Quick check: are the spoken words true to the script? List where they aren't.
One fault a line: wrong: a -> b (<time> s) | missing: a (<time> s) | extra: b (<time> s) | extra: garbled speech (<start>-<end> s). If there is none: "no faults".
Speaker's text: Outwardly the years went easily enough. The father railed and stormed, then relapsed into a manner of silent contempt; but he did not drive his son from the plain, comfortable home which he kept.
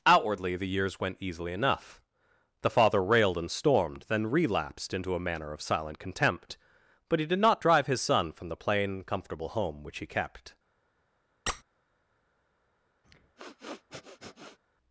no faults